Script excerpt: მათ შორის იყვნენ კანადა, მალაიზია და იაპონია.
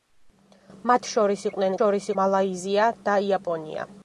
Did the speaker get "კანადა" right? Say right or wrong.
wrong